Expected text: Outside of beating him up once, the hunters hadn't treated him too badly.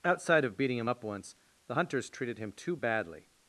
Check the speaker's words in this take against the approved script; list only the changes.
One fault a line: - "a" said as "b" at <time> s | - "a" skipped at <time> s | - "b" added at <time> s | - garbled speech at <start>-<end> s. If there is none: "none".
- "hadn't" skipped at 2.1 s